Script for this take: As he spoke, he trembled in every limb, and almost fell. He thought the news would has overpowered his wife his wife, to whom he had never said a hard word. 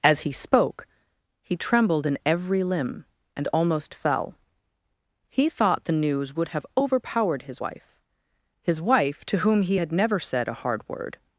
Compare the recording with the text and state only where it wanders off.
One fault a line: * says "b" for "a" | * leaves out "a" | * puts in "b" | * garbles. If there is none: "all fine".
* says "have" for "has"